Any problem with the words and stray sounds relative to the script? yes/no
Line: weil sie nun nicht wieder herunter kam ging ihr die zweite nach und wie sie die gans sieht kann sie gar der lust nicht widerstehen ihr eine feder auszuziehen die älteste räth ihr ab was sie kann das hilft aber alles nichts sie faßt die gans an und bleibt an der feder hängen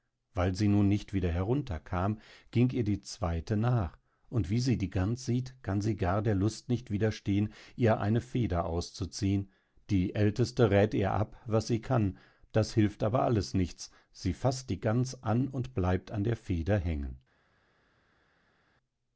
no